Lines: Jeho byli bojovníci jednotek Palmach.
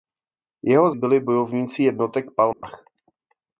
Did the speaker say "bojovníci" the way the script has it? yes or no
yes